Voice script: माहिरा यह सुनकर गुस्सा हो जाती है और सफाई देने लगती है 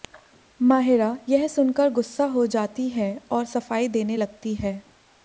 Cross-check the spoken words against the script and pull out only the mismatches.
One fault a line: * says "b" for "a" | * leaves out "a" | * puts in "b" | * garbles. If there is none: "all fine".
all fine